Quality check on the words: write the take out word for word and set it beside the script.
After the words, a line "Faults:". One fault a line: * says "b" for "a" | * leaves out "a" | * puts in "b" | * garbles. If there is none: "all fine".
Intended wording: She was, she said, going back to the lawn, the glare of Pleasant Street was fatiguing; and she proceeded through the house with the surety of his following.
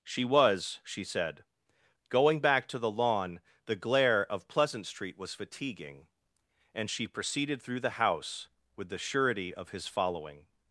She was, she said, going back to the lawn, the glare of Pleasant Street was fatiguing; and she proceeded through the house with the surety of his following.
Faults:
all fine